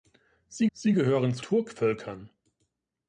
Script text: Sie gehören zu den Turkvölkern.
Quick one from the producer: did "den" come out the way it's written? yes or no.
no